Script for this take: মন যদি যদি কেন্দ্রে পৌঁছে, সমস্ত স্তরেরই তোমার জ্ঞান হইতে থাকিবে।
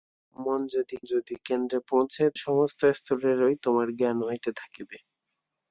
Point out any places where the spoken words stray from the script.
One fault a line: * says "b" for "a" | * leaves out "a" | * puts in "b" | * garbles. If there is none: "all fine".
all fine